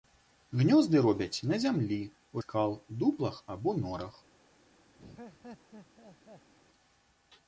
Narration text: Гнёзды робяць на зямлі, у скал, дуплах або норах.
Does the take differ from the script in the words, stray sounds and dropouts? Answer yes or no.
yes